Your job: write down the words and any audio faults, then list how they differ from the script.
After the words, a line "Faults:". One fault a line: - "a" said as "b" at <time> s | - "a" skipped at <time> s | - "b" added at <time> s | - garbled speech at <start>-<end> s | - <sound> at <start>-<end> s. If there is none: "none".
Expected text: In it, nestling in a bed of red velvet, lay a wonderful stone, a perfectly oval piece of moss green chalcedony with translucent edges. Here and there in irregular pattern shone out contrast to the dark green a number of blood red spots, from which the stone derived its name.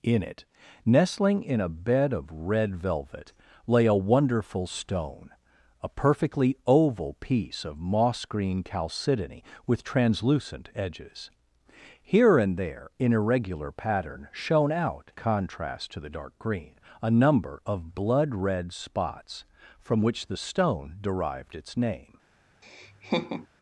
In it, nestling in a bed of red velvet, lay a wonderful stone, a perfectly oval piece of moss green chalcedony with translucent edges. Here and there in irregular pattern shone out contrast to the dark green a number of blood red spots, from which the stone derived its name.
Faults:
- laugh at 22.6-23.5 s